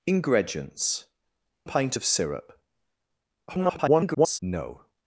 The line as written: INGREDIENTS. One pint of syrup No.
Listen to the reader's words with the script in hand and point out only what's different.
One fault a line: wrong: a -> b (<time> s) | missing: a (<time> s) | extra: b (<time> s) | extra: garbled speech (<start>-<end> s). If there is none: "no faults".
missing: One (1.1 s)
extra: garbled speech (3.5-4.4 s)